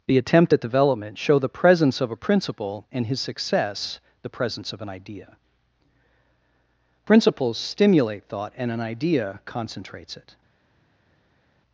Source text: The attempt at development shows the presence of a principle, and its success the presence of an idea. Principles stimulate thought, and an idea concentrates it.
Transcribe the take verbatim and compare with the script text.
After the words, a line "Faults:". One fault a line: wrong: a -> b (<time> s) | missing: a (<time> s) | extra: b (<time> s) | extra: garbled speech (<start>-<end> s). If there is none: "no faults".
The attempt at development show the presence of a principle, and his success the presence of an idea. Principles stimulate thought, and an idea concentrates it.
Faults:
wrong: shows -> show (1.2 s)
wrong: its -> his (3.1 s)